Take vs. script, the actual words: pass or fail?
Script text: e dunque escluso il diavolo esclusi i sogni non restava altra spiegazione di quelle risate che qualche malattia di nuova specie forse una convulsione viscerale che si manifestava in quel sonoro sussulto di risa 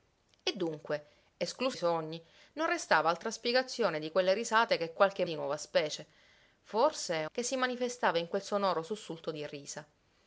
fail